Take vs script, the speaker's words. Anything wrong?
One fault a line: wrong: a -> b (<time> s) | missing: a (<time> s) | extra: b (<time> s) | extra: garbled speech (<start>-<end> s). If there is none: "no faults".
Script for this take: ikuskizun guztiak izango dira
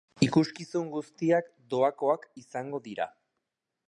extra: doakoak (1.7 s)